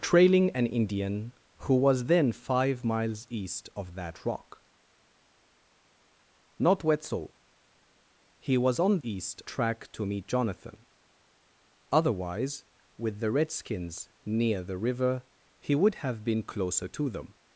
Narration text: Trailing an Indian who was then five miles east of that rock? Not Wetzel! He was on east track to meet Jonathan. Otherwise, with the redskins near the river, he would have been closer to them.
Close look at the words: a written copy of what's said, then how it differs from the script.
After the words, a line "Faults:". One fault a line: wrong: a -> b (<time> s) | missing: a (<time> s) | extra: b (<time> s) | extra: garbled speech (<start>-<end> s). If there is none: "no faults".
Trailing an Indian who was then five miles east of that rock? Not Wetzel! He was on east track to meet Jonathan. Otherwise, with the redskins near the river, he would have been closer to them.
Faults:
no faults